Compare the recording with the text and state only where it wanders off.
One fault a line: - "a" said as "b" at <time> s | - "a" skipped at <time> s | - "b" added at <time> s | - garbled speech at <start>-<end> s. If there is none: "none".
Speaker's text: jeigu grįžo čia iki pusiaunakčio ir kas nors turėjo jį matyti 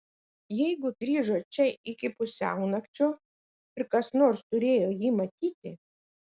none